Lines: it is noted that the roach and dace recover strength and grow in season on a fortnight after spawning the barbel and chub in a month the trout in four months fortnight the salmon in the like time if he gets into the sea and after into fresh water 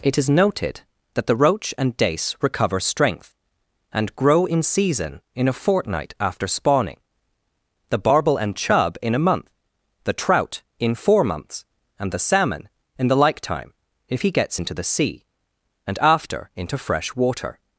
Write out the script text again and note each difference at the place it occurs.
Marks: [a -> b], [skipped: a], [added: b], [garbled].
it is noted that the roach and dace recover strength and grow in season [on -> in] a fortnight after spawning the barbel and chub in a month the trout in four months [fortnight -> and] the salmon in the like time if he gets into the sea and after into fresh water